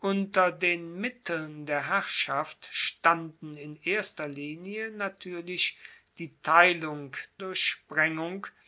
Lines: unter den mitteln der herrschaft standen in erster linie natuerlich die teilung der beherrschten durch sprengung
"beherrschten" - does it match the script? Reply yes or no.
no